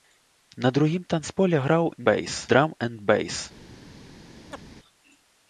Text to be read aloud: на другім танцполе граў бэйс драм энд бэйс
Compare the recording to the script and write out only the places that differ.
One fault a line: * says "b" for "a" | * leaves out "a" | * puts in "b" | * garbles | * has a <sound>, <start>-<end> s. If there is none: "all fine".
* has a chirp, 4.5-4.6 s